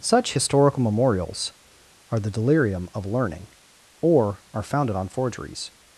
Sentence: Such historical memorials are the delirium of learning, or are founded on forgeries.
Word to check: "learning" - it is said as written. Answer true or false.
true